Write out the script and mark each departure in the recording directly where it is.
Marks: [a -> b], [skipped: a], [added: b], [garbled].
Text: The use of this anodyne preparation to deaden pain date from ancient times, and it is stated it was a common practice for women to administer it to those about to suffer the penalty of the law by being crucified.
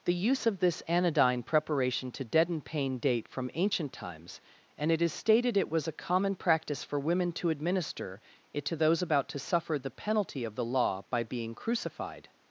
The use of this anodyne preparation to deaden pain date from ancient times, and it is stated it was a common practice for women to administer it to those about to suffer the penalty of the law by being crucified.